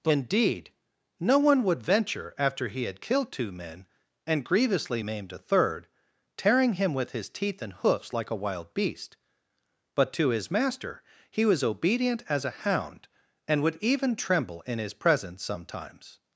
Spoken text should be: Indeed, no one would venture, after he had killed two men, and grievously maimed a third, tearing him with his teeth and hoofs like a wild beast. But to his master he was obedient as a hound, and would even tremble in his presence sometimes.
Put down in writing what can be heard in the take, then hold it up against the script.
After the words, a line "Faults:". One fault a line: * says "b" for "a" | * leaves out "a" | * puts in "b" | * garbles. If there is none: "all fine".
Indeed, no one would venture, after he had killed two men, and grievously maimed a third, tearing him with his teeth and hoofs like a wild beast. But to his master he was obedient as a hound, and would even tremble in his presence sometimes.
Faults:
all fine